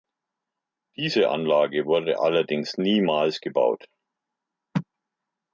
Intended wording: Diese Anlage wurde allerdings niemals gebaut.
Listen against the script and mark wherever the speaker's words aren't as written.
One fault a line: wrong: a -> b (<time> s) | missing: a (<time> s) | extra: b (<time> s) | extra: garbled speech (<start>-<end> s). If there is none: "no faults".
no faults